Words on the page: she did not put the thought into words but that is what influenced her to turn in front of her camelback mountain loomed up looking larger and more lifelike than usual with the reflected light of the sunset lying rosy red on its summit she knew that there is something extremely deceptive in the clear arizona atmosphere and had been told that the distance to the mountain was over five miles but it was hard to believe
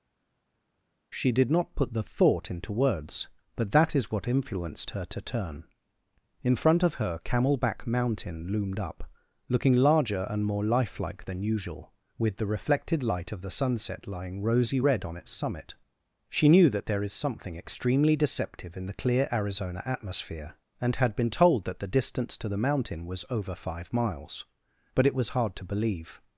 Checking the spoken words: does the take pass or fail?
pass